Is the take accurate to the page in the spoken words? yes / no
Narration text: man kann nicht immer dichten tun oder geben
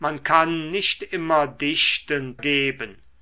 no